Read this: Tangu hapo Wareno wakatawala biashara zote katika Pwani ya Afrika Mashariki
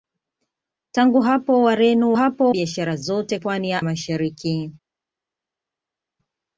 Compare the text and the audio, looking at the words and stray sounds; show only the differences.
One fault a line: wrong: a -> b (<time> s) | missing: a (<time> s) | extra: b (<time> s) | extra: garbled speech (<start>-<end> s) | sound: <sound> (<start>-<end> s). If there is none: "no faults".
wrong: wakatawala -> hapo (2.1 s)
missing: katika (3.4 s)
missing: Afrika (3.8 s)